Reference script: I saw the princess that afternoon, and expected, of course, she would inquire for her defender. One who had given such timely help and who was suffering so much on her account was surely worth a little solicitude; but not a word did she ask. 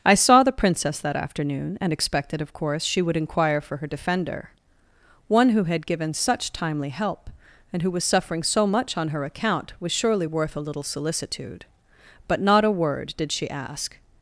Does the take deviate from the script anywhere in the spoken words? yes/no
no